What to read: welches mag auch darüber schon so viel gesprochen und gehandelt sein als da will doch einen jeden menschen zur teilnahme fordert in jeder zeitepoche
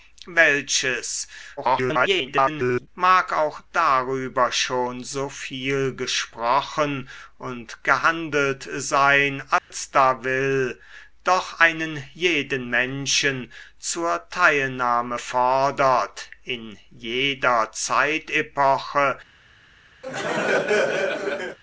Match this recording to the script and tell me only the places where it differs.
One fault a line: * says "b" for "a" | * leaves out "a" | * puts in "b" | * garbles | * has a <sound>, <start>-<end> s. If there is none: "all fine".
* garbles
* has a dropout, 9.6-9.7 s
* has a laugh, 20.0-21.6 s